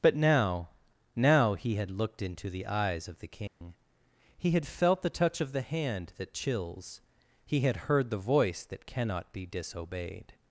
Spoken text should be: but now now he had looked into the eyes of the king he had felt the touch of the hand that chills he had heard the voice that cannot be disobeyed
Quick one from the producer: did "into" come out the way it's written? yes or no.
yes